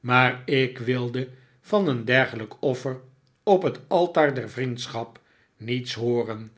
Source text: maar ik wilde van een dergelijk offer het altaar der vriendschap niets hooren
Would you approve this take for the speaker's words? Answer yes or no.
no